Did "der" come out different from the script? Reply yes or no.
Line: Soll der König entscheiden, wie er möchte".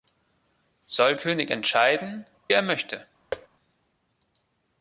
yes